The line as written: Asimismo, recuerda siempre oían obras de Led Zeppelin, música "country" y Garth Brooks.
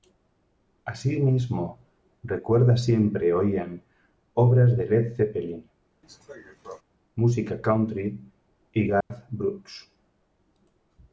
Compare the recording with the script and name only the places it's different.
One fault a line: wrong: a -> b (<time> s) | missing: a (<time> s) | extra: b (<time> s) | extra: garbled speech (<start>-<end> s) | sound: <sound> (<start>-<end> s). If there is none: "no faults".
sound: cough (6.0-6.8 s)
sound: dropout (9.0-9.1 s)